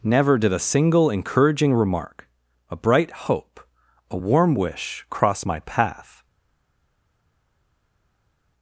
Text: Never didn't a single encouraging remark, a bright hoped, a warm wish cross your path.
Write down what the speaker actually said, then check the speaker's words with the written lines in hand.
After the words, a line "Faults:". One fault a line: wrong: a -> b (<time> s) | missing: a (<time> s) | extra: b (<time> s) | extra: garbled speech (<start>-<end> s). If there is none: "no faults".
Never did a single encouraging remark, a bright hope, a warm wish cross my path.
Faults:
wrong: didn't -> did (0.4 s)
wrong: hoped -> hope (3.3 s)
wrong: your -> my (5.4 s)